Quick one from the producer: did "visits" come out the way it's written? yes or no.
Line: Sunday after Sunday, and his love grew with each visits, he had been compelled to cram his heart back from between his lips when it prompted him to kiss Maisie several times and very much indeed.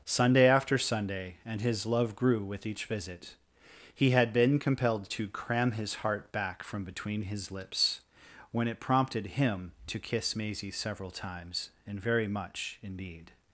no